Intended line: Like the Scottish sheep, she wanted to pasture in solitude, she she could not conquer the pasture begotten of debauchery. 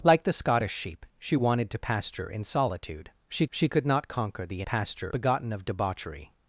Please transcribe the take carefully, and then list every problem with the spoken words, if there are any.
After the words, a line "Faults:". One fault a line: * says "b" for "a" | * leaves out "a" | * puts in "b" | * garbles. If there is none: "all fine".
Like the Scottish sheep, she wanted to pasture in solitude, she she could not conquer the pasture begotten of debauchery.
Faults:
all fine